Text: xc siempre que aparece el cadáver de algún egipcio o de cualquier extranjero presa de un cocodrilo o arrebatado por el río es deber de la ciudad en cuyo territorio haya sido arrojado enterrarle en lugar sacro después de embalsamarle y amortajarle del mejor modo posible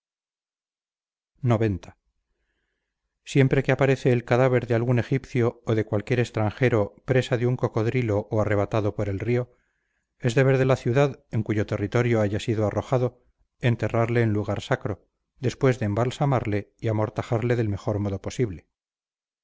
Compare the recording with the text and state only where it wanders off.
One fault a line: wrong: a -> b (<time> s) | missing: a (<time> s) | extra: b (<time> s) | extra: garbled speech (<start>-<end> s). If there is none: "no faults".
no faults